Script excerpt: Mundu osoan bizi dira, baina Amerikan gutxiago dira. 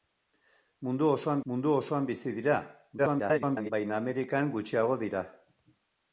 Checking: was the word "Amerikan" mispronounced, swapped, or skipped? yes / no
no